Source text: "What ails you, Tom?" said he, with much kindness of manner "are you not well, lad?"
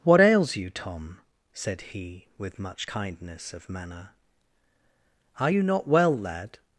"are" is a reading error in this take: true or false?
false